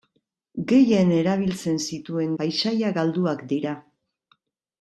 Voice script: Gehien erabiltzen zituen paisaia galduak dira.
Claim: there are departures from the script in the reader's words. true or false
false